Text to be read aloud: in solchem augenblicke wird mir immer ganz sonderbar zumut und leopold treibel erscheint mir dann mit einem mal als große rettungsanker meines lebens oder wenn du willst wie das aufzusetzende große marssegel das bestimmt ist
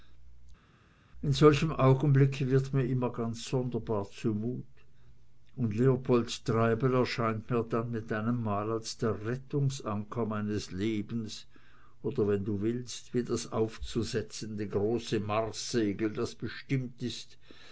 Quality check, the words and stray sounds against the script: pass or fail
fail